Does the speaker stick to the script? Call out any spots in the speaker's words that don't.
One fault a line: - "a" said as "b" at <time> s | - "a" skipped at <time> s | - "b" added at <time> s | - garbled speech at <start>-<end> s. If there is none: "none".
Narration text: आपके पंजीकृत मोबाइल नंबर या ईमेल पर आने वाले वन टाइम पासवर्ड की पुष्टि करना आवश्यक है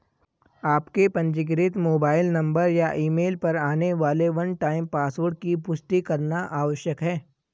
none